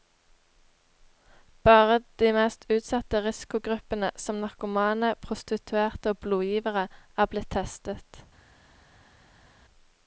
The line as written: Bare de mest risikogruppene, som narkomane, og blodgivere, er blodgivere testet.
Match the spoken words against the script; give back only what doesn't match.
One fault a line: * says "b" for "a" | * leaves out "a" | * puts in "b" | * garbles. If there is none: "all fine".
* puts in "utsatte"
* puts in "prostituerte"
* says "blitt" for "blodgivere"